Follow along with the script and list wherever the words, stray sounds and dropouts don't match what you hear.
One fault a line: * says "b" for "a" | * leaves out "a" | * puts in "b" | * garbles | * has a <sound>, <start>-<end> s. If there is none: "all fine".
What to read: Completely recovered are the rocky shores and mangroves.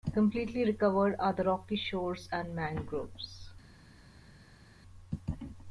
all fine